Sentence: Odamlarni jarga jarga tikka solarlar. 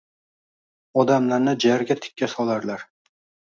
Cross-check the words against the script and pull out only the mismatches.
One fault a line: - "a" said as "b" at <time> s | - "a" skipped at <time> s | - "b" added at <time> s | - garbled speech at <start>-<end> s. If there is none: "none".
- "jarga" skipped at 2.0 s